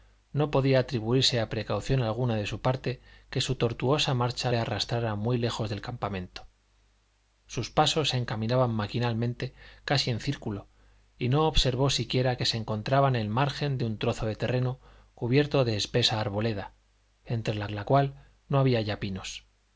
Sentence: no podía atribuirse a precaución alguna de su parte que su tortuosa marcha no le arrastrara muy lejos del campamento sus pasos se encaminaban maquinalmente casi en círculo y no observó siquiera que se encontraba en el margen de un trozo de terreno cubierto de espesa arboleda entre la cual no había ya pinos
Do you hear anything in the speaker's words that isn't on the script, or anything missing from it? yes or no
yes